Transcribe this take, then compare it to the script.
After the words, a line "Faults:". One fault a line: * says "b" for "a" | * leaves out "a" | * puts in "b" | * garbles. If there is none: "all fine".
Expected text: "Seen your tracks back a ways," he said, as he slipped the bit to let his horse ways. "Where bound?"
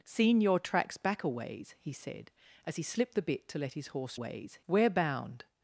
"Seen your tracks back a ways," he said, as he slipped the bit to let his horse ways. "Where bound?"
Faults:
all fine